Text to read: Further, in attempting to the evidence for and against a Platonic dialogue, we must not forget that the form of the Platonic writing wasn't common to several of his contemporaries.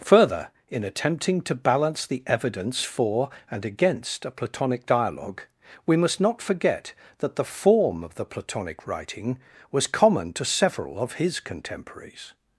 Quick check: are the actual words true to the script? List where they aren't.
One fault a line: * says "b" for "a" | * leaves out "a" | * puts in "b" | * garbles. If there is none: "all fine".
* puts in "balance"
* says "was" for "wasn't"